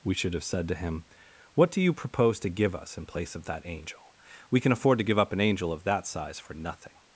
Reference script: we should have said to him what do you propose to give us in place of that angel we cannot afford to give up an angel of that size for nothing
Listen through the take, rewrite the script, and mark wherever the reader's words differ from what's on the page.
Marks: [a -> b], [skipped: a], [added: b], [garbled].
we should have said to him what do you propose to give us in place of that angel we [cannot -> can] afford to give up an angel of that size for nothing